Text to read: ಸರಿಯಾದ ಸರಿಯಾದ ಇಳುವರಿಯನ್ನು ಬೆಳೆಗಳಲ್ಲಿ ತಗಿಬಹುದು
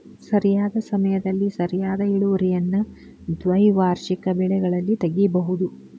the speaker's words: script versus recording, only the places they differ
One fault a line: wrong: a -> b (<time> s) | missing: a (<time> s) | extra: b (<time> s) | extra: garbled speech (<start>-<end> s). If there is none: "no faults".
extra: ಸಮಯದಲ್ಲಿ (0.8 s)
extra: ದ್ವೈವಾರ್ಷಿಕ (3.4 s)